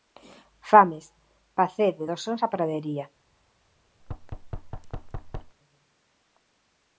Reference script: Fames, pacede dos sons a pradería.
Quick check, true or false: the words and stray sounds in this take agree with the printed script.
false